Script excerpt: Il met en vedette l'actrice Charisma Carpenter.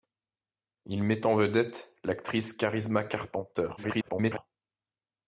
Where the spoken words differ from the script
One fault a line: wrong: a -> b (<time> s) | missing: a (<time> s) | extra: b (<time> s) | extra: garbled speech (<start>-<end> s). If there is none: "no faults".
extra: garbled speech (3.8-4.4 s)